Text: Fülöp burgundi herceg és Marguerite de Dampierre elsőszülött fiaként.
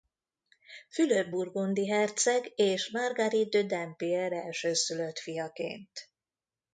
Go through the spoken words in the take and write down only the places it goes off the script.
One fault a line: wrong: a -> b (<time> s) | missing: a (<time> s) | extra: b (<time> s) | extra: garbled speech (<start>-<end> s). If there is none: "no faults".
no faults